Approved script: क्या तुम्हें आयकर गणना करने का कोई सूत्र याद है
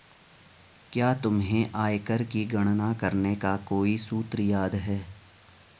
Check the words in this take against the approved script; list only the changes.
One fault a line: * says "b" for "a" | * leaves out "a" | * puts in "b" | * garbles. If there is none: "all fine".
* puts in "की"